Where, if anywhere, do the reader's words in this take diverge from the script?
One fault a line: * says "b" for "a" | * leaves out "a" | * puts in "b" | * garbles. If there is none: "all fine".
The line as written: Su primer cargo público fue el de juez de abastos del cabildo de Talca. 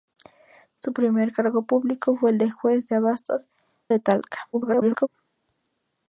* leaves out "del cabildo"
* garbles